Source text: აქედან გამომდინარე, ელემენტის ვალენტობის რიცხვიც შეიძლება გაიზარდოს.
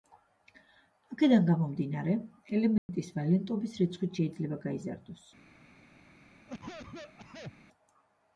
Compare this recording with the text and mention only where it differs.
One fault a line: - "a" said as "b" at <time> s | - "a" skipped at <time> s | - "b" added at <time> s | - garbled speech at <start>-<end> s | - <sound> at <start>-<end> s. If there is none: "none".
- dropout at 2.8-2.9 s
- cough at 6.5-7.5 s